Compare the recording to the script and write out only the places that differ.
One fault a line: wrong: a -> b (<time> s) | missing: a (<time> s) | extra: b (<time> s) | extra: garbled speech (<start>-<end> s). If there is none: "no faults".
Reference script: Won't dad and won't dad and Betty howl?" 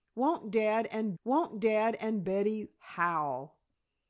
no faults